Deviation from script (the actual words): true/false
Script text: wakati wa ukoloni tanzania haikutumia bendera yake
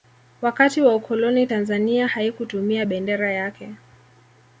false